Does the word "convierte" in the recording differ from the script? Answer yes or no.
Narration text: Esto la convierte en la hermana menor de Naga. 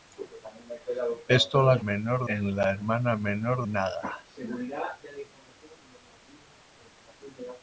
yes